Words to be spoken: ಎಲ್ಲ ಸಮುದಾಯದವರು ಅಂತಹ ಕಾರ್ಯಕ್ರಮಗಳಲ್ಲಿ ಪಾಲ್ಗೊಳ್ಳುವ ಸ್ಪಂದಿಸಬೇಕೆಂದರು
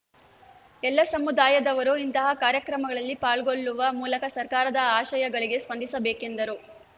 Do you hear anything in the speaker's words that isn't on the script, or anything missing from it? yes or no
yes